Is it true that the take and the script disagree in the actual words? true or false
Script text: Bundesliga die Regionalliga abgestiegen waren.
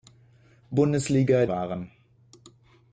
true